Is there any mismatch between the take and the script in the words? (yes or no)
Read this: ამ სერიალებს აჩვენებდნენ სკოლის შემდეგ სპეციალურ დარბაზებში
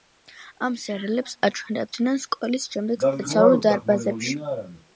no